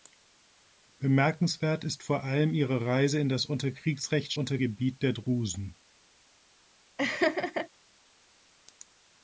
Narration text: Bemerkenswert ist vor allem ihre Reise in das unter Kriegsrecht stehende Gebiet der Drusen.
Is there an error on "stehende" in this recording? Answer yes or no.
yes